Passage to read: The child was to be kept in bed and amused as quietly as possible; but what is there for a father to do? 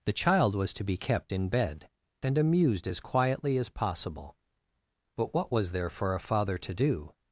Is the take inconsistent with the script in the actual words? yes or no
yes